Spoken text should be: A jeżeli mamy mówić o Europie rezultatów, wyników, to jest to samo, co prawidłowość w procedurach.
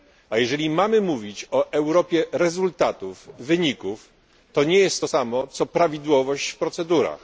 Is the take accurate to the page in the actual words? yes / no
no